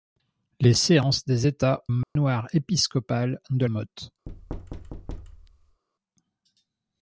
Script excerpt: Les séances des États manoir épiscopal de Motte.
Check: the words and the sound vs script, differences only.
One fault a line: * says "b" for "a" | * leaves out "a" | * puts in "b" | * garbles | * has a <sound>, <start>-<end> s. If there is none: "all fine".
* has a dropout, 2.0-2.2 s
* has a thud, 4.3-5.8 s